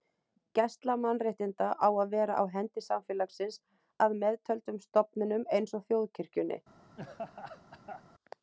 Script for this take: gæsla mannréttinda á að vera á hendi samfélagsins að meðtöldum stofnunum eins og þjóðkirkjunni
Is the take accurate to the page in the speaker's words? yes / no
yes